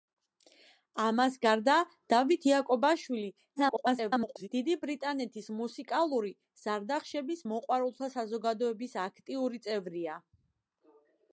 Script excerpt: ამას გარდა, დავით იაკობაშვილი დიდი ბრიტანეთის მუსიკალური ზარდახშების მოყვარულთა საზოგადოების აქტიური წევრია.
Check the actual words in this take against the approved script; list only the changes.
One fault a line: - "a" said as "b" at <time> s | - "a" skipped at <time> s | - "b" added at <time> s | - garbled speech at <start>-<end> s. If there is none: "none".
- garbled speech at 3.6-4.5 s